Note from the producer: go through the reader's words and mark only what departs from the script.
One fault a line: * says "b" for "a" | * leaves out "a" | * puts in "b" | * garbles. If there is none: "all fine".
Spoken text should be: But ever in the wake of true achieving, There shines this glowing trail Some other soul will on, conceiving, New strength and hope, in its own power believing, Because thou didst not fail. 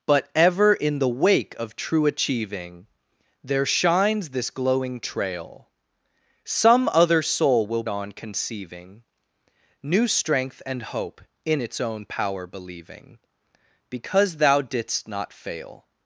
all fine